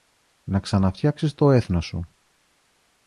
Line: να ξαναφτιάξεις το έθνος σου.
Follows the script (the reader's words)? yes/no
yes